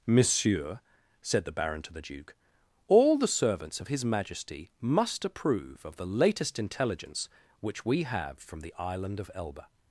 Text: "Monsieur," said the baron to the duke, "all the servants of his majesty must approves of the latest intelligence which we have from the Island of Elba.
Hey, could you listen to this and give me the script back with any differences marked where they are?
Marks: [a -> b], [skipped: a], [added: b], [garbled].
"Monsieur," said the baron to the duke, "all the servants of his majesty must [approves -> approve] of the latest intelligence which we have from the Island of Elba.